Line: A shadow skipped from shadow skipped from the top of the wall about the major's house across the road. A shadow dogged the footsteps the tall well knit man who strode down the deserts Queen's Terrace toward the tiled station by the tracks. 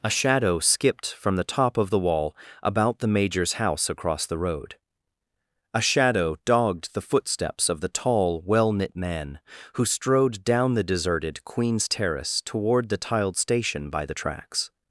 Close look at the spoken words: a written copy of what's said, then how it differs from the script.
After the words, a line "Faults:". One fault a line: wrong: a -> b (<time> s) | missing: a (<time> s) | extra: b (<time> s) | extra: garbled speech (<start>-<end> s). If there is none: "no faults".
A shadow skipped from the top of the wall about the major's house across the road. A shadow dogged the footsteps of the tall well knit man who strode down the deserted Queen's Terrace toward the tiled station by the tracks.
Faults:
missing: shadow skipped from (1.4 s)
extra: of (7.7 s)
wrong: deserts -> deserted (10.8 s)